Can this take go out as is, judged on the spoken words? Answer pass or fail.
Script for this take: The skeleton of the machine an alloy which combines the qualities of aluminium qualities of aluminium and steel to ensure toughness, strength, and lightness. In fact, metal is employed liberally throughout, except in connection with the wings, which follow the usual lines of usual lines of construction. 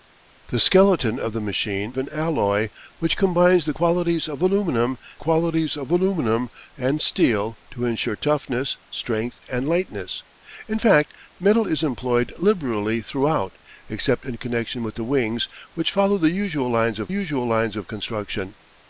pass